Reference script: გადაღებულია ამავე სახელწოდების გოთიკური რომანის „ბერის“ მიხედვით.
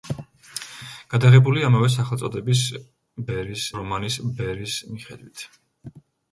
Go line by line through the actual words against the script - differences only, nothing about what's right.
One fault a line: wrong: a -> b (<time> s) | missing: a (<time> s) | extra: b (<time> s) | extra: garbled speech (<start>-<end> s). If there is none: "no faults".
wrong: გოთიკური -> ბერის (3.3 s)